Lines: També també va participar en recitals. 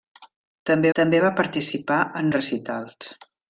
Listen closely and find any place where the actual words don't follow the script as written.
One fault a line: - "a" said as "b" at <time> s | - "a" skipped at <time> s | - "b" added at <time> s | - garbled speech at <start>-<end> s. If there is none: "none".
none